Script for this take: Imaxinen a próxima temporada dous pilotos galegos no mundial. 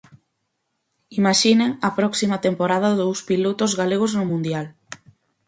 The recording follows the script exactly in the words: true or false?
true